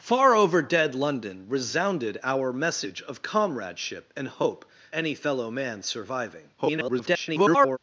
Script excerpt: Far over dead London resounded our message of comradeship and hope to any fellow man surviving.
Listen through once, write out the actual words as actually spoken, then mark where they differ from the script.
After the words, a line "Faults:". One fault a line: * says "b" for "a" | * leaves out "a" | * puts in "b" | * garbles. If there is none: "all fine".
Far over dead London resounded our message of comradeship and hope any fellow man surviving. [garbled]
Faults:
* leaves out "to"
* garbles